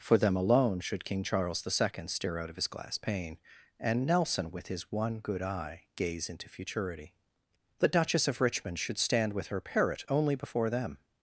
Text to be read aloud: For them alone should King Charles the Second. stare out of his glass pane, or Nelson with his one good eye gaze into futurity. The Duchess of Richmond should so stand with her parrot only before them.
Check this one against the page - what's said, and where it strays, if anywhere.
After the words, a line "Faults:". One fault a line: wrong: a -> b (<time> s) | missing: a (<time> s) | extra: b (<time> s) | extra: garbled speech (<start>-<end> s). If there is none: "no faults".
For them alone should King Charles the Second. stare out of his glass pane, and Nelson with his one good eye gaze into futurity. The Duchess of Richmond should stand with her parrot only before them.
Faults:
wrong: or -> and (3.8 s)
missing: so (9.0 s)